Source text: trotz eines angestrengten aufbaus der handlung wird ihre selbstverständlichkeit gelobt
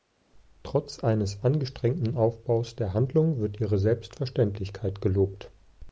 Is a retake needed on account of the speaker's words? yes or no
no